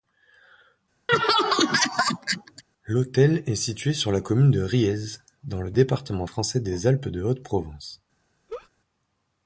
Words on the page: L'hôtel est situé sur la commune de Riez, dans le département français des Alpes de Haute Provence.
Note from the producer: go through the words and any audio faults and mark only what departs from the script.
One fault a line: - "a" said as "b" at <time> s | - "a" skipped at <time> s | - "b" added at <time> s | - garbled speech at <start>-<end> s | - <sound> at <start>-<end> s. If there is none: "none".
- laugh at 1.1-2.6 s
- laugh at 8.5-8.7 s